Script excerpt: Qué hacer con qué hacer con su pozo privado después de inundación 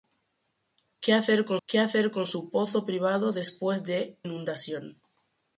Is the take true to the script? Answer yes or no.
yes